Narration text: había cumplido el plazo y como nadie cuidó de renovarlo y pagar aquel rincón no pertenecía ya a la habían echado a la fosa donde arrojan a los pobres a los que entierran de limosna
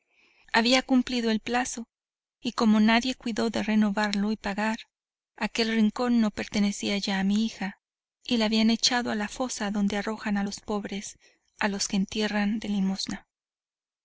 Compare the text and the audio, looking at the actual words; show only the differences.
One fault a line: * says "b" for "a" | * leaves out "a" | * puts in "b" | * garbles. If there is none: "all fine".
* puts in "mi hija y"